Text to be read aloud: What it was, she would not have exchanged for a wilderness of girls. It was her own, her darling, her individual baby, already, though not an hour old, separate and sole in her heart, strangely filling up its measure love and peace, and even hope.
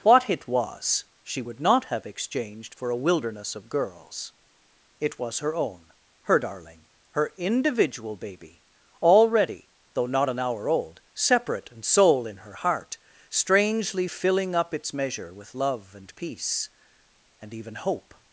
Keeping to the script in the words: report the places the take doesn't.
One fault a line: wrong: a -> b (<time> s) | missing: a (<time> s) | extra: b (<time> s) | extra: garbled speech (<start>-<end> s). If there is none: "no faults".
extra: with (15.3 s)